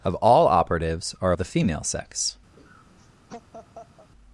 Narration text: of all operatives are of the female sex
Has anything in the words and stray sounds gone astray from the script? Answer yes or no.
yes